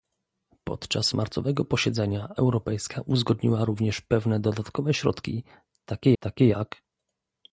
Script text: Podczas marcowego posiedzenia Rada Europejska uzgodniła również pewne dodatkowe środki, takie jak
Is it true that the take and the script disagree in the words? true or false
true